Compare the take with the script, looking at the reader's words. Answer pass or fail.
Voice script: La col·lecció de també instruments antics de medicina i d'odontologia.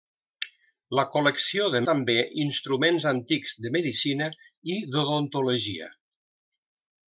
pass